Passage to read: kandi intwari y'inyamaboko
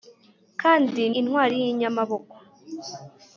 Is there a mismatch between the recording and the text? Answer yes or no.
no